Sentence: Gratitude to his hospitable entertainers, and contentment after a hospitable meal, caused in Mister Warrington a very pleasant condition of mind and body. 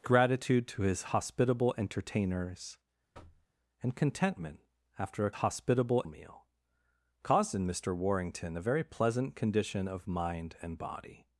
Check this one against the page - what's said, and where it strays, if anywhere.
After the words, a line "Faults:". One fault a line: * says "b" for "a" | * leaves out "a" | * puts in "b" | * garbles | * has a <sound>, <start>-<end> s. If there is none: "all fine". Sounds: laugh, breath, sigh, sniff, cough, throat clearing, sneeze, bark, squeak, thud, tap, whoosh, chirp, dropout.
Gratitude to his hospitable entertainers, and contentment after a hospitable meal, caused in Mister Warrington a very pleasant condition of mind and body.
Faults:
* has a thud, 3.1-3.5 s